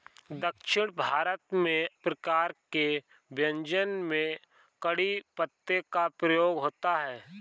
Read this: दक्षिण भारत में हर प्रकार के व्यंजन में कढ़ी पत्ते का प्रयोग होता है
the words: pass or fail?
fail